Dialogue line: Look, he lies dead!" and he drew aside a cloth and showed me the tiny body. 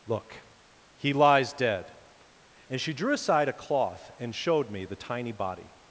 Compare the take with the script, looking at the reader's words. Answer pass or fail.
fail